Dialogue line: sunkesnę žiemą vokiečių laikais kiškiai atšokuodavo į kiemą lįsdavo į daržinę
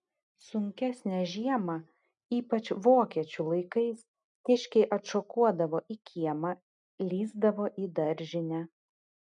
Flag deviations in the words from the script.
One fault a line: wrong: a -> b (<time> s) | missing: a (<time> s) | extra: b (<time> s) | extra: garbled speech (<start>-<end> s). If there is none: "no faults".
extra: ypač (2.4 s)